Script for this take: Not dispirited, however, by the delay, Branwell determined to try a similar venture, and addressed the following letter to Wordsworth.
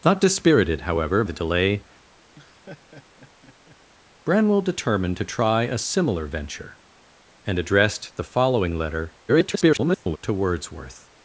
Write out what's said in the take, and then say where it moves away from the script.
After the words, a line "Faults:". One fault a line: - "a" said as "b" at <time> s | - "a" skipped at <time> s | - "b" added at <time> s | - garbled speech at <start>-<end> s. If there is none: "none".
Not dispirited, however, the delay, Branwell determined to try a similar venture, and addressed the following letter [garbled] to Wordsworth.
Faults:
- "by" skipped at 1.2 s
- garbled speech at 9.3-10.2 s